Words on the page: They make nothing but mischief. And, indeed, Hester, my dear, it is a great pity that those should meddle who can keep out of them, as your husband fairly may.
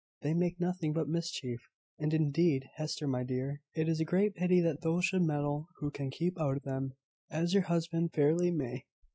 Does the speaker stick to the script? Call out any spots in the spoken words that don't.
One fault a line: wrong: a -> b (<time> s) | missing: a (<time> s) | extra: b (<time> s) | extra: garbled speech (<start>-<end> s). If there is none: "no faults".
no faults